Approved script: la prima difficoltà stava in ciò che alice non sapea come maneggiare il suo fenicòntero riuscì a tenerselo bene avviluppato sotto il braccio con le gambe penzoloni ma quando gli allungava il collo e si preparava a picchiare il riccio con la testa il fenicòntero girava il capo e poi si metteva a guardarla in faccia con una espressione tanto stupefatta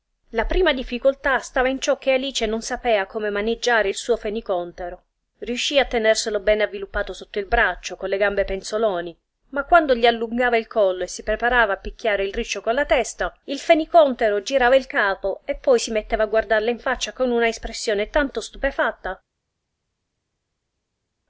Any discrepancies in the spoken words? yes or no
no